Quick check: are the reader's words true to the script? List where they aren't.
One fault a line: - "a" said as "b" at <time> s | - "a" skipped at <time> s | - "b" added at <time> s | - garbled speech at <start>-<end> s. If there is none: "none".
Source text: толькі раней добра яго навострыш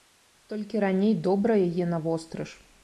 - "яго" said as "яе" at 1.7 s